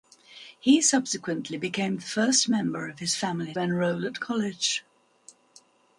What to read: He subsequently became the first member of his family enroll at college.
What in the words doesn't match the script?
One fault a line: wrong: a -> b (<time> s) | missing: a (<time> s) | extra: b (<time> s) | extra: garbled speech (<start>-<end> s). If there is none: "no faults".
no faults